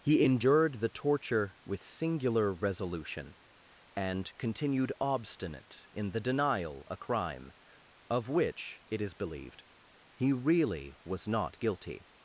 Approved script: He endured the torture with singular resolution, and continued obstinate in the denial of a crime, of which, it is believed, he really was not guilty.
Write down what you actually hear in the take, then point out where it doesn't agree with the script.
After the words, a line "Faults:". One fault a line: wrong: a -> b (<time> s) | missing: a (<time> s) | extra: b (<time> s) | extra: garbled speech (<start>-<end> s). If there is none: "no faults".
He endured the torture with singular resolution, and continued obstinate in the denial a crime, of which, it is believed, he really was not guilty.
Faults:
missing: of (6.9 s)